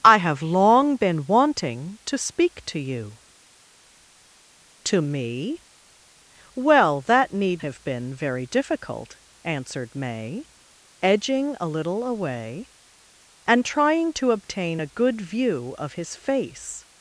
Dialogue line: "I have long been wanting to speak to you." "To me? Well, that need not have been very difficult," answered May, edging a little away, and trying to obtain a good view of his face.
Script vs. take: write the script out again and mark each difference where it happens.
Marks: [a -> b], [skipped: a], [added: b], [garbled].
"I have long been wanting to speak to you." "To me? Well, that need [skipped: not] have been very difficult," answered May, edging a little away, and trying to obtain a good view of his face.